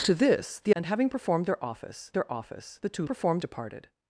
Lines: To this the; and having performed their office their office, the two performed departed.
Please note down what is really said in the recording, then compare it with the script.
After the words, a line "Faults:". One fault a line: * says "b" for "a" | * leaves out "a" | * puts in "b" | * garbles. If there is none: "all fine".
To this the; and having performed their office their office, the two performed departed.
Faults:
all fine